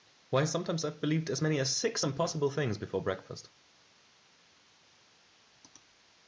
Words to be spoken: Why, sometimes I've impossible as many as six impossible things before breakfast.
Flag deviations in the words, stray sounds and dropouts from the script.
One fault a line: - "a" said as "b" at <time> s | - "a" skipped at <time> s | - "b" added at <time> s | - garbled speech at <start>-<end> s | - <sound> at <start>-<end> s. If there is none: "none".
- "impossible" said as "believed" at 1.0 s